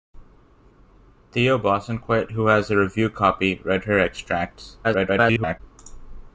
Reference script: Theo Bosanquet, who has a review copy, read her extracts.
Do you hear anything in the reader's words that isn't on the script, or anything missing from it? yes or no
yes